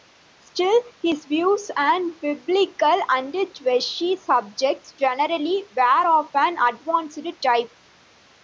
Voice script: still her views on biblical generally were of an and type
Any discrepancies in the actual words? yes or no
yes